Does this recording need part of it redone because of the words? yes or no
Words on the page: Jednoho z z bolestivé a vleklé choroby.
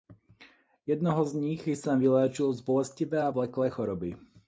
yes